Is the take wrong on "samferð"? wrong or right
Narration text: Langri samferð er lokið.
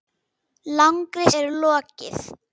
wrong